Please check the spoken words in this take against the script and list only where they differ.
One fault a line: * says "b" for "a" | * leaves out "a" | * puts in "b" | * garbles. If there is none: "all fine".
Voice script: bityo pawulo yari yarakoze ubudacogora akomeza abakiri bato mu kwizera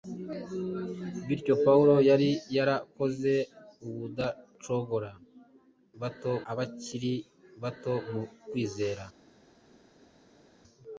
* says "bato" for "akomeza"